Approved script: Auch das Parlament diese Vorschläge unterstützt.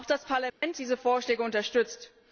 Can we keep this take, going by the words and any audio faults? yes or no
no